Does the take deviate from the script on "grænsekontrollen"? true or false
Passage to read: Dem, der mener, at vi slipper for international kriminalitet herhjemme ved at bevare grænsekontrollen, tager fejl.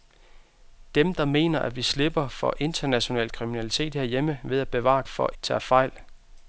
true